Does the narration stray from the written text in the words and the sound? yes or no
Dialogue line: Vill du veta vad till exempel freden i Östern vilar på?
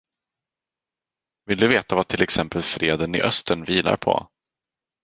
no